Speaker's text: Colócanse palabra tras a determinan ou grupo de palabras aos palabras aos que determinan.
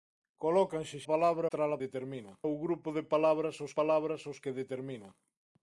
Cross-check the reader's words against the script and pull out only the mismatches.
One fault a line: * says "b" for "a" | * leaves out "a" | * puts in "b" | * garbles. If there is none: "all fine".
all fine